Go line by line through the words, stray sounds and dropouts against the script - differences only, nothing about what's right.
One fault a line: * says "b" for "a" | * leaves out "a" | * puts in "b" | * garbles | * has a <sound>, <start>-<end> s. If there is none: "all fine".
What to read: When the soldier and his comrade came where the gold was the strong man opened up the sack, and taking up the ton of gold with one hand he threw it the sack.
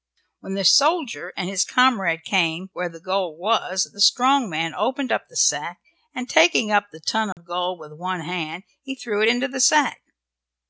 * has a dropout, 7.3-7.4 s
* puts in "into"